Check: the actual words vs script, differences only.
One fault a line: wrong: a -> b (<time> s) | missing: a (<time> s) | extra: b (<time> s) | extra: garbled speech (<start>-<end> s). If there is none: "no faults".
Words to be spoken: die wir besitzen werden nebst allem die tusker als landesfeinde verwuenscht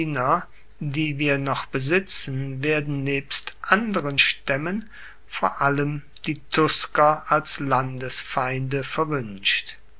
extra: noch (1.4 s)
extra: anderen staemmen vor (3.6 s)